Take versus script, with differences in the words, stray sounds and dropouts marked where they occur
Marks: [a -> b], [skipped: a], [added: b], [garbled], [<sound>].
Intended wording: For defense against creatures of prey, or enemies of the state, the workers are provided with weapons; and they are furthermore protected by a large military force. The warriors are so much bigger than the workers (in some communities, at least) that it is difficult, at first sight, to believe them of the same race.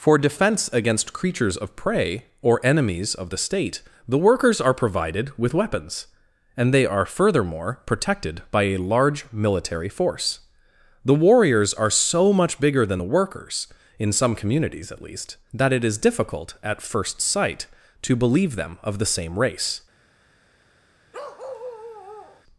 For defense against creatures of prey, or enemies of the state, the workers are provided with weapons; and they are furthermore protected by a large military force. The warriors are so much bigger than the workers (in some communities, at least) that it is difficult, at first sight, to believe them of the same race. [bark]